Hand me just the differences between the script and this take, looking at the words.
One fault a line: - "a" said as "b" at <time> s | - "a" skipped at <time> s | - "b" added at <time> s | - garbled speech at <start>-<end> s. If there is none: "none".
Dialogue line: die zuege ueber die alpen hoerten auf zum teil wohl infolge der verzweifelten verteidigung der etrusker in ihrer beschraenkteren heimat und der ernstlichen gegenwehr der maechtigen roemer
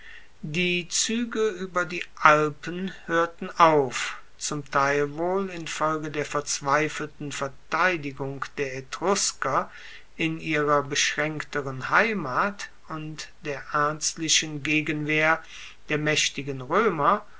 none